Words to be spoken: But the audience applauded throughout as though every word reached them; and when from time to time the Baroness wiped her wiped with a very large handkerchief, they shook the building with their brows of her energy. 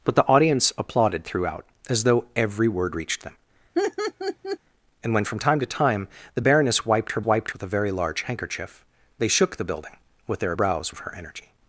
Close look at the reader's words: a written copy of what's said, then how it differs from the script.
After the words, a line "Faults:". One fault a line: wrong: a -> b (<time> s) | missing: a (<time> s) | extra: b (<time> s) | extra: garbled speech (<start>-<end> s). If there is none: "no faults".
But the audience applauded throughout as though every word reached them; and when from time to time the Baroness wiped her wiped with a very large handkerchief, they shook the building with their brows of her energy.
Faults:
no faults